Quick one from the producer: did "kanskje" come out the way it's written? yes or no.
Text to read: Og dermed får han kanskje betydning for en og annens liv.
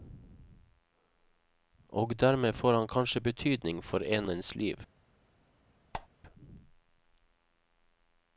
yes